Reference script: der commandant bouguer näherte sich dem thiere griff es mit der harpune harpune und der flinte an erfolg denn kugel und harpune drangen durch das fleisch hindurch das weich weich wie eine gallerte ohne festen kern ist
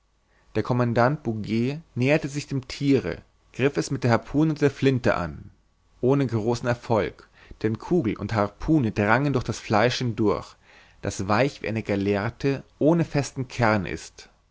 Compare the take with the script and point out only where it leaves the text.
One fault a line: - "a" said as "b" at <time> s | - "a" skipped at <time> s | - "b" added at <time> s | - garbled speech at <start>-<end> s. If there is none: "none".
- "harpune" skipped at 4.5 s
- "ohne großen" added at 6.0 s
- "weich" skipped at 11.6 s